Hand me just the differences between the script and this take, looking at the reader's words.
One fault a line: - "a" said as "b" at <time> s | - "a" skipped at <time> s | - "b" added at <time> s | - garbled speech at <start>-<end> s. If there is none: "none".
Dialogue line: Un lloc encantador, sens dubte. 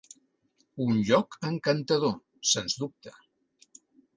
none